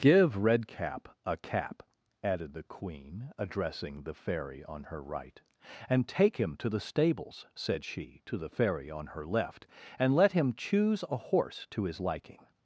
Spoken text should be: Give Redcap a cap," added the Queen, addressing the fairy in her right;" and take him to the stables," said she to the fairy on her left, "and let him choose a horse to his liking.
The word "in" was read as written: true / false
false